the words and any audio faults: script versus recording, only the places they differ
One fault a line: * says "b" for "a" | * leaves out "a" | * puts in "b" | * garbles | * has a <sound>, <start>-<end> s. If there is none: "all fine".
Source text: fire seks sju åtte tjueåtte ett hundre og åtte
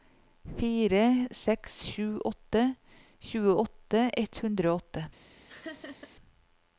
* has a laugh, 5.5-6.2 s